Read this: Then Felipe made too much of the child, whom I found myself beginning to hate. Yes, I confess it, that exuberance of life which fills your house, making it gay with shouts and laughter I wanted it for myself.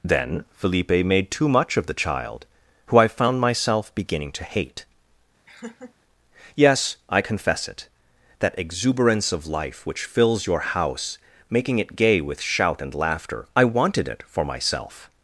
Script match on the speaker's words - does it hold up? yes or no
no